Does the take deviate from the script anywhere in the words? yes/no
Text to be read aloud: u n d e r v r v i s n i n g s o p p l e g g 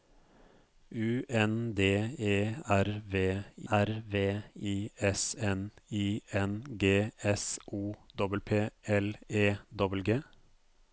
no